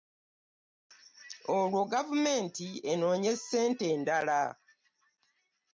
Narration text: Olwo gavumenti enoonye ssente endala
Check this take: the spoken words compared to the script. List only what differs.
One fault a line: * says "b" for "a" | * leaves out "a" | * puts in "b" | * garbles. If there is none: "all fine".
all fine